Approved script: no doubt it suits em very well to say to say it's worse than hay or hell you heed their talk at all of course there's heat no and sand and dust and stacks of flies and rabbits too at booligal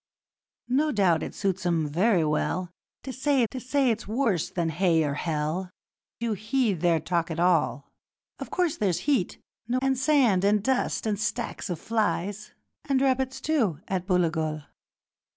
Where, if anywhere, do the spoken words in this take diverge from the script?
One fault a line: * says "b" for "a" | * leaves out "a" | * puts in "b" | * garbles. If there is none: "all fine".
all fine